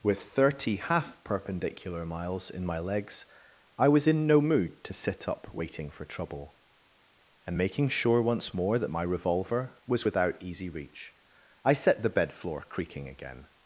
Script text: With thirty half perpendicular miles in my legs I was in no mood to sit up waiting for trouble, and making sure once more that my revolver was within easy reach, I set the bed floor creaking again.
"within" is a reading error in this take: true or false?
true